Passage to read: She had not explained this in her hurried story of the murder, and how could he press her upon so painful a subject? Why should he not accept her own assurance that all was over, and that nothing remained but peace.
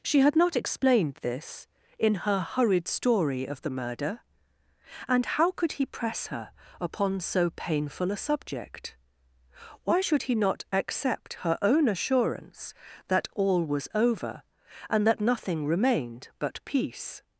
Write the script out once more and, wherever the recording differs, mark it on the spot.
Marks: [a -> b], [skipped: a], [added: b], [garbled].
She had not explained this in her hurried story of the murder, and how could he press her upon so painful a subject? Why should he not accept her own assurance that all was over, and that nothing remained but peace.